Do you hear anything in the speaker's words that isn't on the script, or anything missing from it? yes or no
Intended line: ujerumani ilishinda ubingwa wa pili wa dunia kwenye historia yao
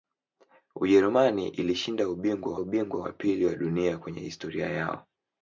yes